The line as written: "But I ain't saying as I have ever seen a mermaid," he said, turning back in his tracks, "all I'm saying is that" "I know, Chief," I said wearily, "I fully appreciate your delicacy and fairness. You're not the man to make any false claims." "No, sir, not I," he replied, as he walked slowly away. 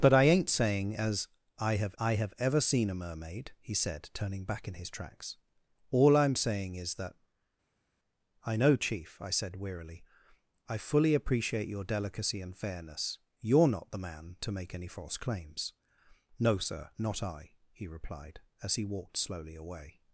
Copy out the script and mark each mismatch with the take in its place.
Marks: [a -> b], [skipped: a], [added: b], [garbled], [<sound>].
"But I ain't saying as I have [added: I have] ever seen a mermaid," he said, turning back in his tracks, "all I'm saying is that" "I know, Chief," I said wearily, "I fully appreciate your delicacy and fairness. You're not the man to make any false claims." "No, sir, not I," he replied, as he walked slowly away.